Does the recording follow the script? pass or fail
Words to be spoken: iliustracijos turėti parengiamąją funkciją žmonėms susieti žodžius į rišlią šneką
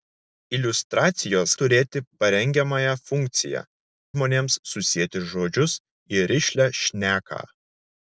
pass